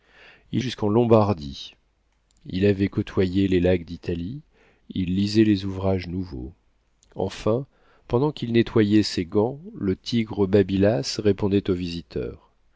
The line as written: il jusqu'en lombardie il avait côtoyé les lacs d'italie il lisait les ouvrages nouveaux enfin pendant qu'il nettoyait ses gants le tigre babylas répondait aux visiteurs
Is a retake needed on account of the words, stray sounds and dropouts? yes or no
no